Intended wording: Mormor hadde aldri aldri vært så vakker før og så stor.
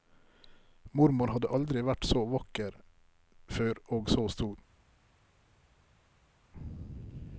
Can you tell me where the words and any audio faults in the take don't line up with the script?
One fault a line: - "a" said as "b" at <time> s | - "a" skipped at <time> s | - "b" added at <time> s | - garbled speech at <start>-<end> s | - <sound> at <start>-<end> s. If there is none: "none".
- "aldri" skipped at 1.8 s